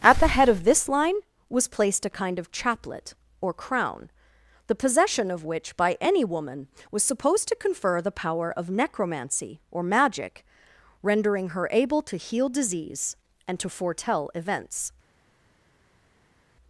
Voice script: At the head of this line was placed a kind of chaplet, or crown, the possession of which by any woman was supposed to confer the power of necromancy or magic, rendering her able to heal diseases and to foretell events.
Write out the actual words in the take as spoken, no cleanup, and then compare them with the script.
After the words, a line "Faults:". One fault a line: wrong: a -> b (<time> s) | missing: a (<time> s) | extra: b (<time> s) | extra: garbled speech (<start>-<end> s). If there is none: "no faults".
At the head of this line was placed a kind of chaplet, or crown, the possession of which by any woman was supposed to confer the power of necromancy or magic, rendering her able to heal disease and to foretell events.
Faults:
wrong: diseases -> disease (12.5 s)